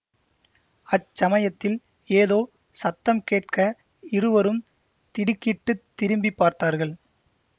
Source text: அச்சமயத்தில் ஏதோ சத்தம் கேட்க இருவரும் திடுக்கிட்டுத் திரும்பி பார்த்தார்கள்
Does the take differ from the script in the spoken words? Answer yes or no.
no